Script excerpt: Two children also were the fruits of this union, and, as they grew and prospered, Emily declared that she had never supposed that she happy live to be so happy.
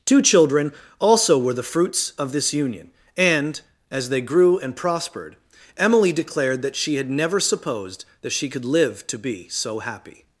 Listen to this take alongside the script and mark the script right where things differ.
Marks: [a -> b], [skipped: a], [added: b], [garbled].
Two children also were the fruits of this union, and, as they grew and prospered, Emily declared that she had never supposed that she [happy -> could] live to be so happy.